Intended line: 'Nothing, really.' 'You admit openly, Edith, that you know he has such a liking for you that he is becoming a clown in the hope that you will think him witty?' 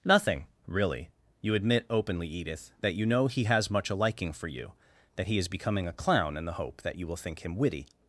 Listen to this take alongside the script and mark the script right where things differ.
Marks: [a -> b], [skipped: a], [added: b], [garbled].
'Nothing, really.' 'You admit openly, Edith, that you know he has [such -> much] a liking for you that he is becoming a clown in the hope that you will think him witty?'